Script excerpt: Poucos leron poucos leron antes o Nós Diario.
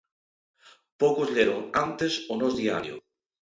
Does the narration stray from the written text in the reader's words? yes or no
yes